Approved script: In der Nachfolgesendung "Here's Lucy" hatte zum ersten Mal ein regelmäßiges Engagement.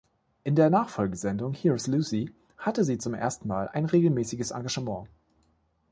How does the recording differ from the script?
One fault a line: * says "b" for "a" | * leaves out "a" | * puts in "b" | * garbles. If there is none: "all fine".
* puts in "sie"